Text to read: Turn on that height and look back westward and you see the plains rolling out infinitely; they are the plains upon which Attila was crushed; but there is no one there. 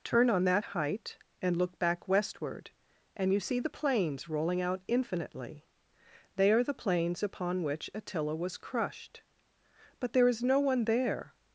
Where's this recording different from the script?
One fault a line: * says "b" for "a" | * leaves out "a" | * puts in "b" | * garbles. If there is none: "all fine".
all fine